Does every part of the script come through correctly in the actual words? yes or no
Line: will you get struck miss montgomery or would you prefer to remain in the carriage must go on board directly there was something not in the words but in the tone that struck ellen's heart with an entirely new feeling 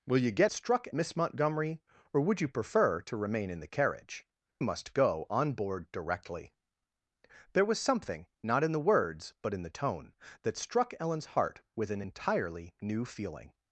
yes